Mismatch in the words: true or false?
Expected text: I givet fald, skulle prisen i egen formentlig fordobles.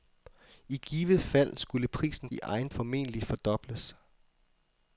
false